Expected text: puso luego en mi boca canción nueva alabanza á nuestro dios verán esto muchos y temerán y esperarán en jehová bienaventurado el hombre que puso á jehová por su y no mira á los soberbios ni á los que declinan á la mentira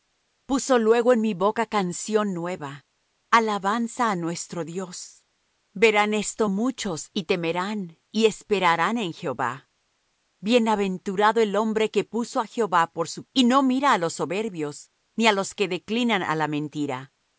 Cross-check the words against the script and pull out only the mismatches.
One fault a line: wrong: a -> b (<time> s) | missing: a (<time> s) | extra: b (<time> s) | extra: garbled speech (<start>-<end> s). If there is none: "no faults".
no faults